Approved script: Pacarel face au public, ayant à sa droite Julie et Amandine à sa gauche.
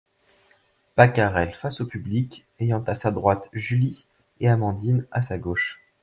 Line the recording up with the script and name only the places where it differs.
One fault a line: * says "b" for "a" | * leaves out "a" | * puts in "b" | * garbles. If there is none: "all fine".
all fine